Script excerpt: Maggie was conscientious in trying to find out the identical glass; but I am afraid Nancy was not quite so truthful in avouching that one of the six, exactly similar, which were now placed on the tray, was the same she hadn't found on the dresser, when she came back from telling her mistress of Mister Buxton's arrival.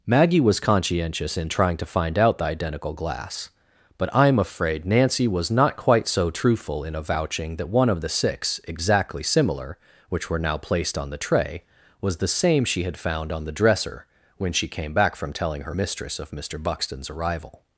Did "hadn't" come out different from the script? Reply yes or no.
yes